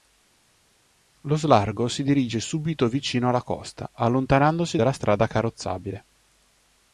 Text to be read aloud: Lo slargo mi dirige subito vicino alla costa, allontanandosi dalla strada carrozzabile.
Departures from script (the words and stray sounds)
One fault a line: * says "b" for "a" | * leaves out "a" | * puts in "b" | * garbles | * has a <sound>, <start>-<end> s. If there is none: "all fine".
* says "si" for "mi"